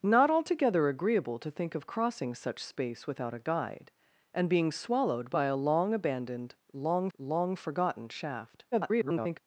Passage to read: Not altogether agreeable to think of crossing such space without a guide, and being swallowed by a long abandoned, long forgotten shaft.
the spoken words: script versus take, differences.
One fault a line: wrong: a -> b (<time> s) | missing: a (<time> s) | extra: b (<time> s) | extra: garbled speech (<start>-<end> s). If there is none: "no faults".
extra: long (7.2 s)
extra: garbled speech (8.7-9.4 s)